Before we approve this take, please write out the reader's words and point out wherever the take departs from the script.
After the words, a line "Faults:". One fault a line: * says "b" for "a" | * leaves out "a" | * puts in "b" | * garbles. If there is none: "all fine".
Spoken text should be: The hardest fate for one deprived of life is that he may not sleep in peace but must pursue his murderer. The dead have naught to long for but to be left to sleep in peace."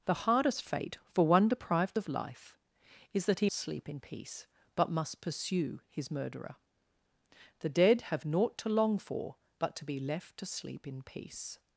The hardest fate for one deprived of life is that he sleep in peace but must pursue his murderer. The dead have naught to long for but to be left to sleep in peace."
Faults:
* leaves out "may not"